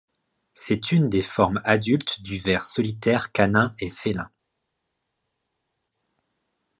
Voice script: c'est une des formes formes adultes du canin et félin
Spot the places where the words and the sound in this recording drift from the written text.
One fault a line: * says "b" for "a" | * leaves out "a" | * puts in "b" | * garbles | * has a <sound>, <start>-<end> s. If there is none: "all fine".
* leaves out "formes"
* puts in "ver solitaire"